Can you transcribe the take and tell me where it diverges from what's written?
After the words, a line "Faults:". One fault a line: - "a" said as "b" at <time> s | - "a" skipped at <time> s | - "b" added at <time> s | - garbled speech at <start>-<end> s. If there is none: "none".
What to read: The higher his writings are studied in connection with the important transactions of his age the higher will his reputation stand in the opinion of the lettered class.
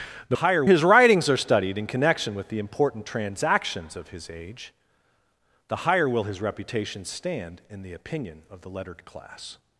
The higher his writings are studied in connection with the important transactions of his age the higher will his reputation stand in the opinion of the lettered class.
Faults:
none